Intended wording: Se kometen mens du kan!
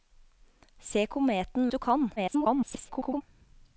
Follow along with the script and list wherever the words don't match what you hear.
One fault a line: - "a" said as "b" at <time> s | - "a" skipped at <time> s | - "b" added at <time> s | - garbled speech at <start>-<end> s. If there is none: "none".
- "mens" skipped at 1.7 s
- garbled speech at 2.2-3.2 s